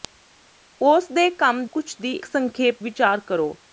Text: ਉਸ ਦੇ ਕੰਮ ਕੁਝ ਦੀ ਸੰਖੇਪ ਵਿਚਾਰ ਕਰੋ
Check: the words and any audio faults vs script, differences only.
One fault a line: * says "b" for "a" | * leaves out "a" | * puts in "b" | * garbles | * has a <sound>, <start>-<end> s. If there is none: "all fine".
all fine